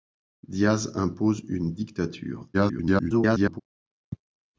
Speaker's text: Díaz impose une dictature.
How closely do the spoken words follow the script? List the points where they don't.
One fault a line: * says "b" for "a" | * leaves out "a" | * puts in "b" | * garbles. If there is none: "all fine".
* garbles